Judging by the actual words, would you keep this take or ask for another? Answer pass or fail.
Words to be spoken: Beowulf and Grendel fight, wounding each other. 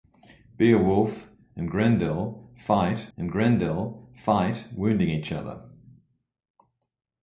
fail